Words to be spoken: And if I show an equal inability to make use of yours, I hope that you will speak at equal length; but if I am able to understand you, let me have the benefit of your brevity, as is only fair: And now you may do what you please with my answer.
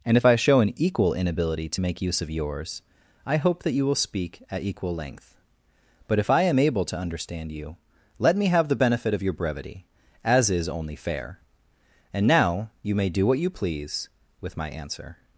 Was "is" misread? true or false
false